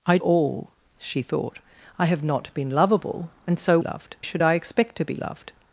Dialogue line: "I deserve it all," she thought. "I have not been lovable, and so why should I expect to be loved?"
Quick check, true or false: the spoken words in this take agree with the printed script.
false